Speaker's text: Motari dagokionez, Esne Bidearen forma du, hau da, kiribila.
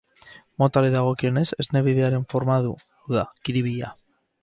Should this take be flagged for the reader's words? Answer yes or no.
no